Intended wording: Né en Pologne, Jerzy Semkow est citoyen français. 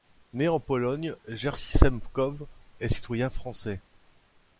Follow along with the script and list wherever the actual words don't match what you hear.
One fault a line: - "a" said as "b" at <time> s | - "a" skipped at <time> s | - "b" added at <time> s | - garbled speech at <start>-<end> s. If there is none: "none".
none